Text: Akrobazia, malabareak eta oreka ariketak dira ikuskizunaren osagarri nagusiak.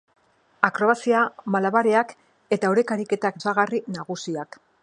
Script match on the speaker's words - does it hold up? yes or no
no